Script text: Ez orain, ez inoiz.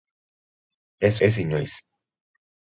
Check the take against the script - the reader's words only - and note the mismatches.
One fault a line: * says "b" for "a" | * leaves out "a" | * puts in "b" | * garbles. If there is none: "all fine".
* leaves out "orain"